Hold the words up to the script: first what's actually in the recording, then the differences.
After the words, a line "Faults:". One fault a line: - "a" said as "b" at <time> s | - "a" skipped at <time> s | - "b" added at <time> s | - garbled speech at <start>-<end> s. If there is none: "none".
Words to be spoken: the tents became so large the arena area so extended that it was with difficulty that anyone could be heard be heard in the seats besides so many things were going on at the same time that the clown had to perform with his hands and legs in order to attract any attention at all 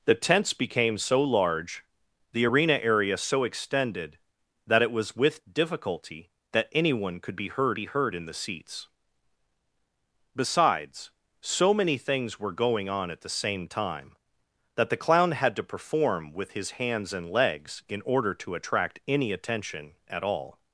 the tents became so large the arena area so extended that it was with difficulty that anyone could be heard be heard in the seats besides so many things were going on at the same time that the clown had to perform with his hands and legs in order to attract any attention at all
Faults:
none